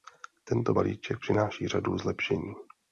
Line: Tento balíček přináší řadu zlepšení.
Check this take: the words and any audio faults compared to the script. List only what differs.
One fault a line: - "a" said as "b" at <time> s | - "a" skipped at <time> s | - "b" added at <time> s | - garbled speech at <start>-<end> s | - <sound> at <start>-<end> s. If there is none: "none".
none